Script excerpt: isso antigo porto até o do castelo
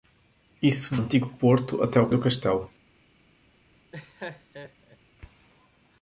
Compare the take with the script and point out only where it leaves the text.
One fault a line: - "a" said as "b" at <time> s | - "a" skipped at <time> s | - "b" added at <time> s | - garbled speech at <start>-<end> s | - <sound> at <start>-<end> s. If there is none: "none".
- laugh at 3.9-5.0 s